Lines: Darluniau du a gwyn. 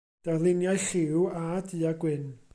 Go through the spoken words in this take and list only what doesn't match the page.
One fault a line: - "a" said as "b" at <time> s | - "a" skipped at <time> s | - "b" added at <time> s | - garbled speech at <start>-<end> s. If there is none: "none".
- "lliw a" added at 0.9 s